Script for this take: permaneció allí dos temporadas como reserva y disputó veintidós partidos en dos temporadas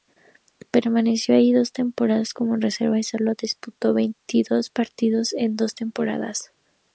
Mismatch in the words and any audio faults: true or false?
true